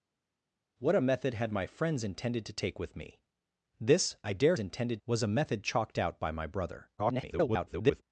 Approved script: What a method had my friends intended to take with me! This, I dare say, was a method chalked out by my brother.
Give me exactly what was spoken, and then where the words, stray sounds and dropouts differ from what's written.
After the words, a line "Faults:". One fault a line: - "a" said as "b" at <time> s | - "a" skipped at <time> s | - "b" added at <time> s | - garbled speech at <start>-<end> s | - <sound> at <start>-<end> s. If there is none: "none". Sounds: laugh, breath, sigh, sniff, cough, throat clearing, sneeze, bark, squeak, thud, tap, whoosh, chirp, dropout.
What a method had my friends intended to take with me! This, I dare intended, was a method chalked out by my brother. [garbled]
Faults:
- "say" said as "intended" at 4.6 s
- garbled speech at 7.0-8.0 s